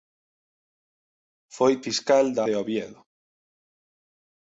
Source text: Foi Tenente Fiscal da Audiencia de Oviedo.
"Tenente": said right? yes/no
no